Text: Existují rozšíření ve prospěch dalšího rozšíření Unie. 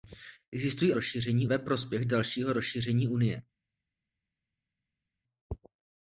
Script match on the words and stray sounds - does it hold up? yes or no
yes